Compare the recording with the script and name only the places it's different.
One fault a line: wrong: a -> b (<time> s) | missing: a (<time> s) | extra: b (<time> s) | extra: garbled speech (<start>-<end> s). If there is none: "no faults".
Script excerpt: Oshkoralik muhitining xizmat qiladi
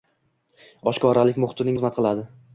no faults